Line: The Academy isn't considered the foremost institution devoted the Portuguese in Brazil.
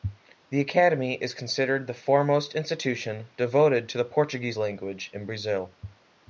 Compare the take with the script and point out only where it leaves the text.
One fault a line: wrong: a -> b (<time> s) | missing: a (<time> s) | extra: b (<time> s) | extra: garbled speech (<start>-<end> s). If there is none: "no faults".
wrong: isn't -> is (1.2 s)
extra: to (3.9 s)
extra: language (4.6 s)